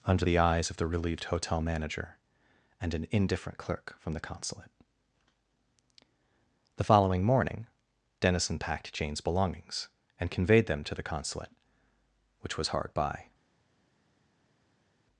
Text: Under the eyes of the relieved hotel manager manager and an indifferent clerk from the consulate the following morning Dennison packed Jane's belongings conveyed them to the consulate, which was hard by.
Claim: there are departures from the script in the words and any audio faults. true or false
true